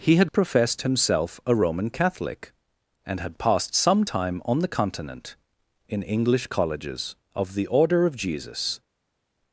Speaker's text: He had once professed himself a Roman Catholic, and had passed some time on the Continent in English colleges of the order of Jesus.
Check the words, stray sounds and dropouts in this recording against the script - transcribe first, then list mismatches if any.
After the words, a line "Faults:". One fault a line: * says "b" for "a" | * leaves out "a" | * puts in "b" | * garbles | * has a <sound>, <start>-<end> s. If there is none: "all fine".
He had professed himself a Roman Catholic, and had passed some time on the Continent in English colleges of the order of Jesus.
Faults:
* leaves out "once"